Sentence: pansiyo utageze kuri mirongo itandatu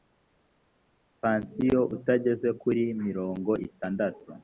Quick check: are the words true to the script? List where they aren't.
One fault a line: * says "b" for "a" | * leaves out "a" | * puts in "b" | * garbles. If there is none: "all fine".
all fine